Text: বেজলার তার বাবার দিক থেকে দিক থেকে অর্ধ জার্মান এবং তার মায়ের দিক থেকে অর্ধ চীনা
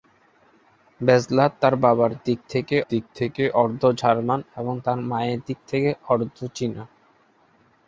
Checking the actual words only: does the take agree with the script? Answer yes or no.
yes